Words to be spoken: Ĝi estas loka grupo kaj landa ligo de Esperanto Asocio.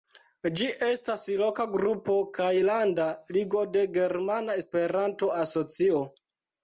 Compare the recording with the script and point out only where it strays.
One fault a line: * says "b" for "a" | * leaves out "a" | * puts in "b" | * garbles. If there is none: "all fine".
* puts in "Germana"